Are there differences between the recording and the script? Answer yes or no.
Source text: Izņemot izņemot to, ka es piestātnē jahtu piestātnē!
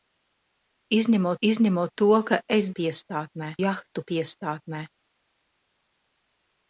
no